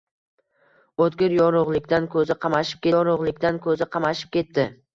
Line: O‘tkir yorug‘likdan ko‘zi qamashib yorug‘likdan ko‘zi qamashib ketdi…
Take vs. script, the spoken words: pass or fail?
pass